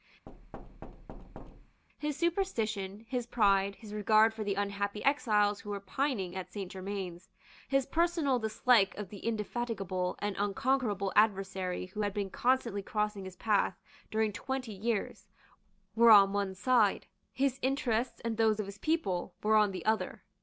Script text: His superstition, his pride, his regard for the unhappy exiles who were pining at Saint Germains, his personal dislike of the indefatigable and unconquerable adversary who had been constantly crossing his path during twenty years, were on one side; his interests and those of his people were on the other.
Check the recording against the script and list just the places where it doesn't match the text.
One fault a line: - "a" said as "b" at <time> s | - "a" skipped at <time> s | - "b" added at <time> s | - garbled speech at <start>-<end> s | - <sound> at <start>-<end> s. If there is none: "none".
- thud at 0.3-1.8 s